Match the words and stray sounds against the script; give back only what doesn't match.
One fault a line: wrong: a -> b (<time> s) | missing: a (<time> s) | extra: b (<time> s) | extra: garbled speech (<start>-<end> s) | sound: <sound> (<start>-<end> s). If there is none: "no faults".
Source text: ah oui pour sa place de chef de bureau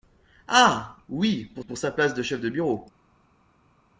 extra: pour (1.7 s)